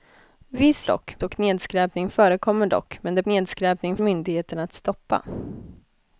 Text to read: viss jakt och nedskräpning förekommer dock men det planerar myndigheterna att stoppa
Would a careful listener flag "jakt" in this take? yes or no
yes